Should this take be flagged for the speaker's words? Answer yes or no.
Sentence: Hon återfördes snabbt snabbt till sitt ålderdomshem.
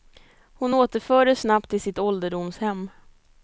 yes